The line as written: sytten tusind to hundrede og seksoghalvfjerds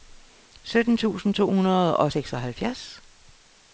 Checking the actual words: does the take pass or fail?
pass